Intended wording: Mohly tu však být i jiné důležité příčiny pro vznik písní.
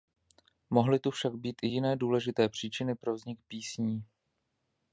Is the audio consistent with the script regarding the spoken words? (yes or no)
yes